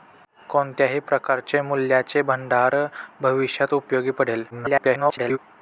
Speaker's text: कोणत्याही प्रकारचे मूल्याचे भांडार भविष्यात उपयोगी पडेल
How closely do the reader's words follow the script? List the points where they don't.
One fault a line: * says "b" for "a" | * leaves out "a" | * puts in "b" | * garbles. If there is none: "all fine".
* garbles